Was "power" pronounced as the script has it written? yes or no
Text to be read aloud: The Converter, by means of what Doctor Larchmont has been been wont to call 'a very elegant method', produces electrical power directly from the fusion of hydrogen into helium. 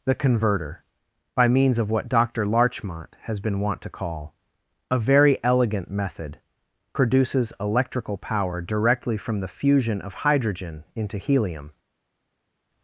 yes